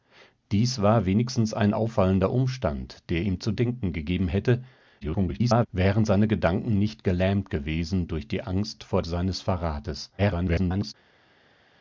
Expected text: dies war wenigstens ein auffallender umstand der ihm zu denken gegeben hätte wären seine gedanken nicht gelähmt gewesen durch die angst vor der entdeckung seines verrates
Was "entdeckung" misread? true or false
true